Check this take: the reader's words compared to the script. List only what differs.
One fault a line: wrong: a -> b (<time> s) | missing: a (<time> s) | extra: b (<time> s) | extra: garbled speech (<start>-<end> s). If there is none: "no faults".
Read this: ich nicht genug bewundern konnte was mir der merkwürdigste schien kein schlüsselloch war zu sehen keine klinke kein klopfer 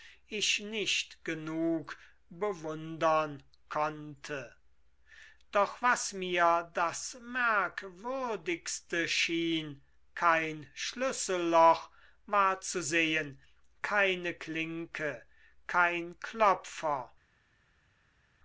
extra: doch (5.5 s)
wrong: der -> das (6.7 s)